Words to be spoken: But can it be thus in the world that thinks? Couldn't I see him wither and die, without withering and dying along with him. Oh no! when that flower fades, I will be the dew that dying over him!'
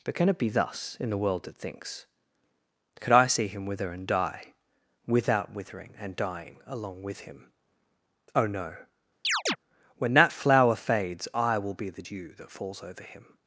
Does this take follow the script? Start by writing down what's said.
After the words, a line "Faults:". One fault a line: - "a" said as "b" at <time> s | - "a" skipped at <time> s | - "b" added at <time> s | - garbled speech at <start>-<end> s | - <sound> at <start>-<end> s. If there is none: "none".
But can it be thus in the world that thinks? Could I see him wither and die, without withering and dying along with him. Oh no! when that flower fades, I will be the dew that falls over him!'
Faults:
- "Couldn't" said as "Could" at 3.0 s
- chirp at 9.2-9.6 s
- "dying" said as "falls" at 12.5 s